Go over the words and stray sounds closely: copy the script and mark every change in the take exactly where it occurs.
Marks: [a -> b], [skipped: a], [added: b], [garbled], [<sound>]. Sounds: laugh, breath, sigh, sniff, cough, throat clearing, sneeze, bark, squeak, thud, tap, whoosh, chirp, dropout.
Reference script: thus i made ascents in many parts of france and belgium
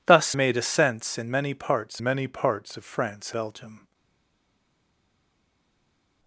thus [skipped: i] made ascents in many parts [added: many parts] of france [skipped: and] belgium